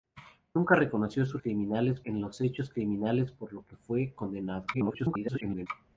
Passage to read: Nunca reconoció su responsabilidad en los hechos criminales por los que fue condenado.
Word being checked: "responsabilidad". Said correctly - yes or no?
no